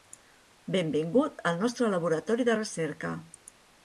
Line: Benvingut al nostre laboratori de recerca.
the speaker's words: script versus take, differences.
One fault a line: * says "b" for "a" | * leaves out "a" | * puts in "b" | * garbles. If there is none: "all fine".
all fine